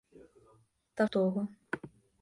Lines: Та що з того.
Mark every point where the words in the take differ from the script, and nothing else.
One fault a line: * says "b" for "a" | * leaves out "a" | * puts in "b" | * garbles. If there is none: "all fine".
* leaves out "що з"